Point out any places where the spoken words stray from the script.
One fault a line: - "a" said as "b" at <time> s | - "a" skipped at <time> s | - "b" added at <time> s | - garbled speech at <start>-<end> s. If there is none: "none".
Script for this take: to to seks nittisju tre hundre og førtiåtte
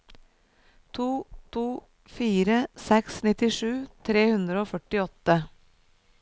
- "fire" added at 2.1 s